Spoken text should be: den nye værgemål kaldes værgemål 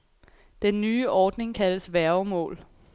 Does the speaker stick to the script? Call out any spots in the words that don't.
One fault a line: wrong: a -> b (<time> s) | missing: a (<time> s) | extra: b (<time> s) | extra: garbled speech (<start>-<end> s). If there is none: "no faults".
wrong: værgemål -> ordning (1.1 s)